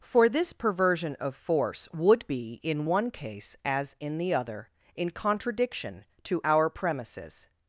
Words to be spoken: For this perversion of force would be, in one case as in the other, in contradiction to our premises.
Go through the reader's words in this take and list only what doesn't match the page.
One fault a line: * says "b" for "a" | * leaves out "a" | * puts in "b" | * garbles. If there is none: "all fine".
all fine